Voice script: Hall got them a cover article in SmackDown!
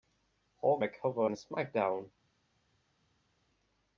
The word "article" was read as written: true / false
false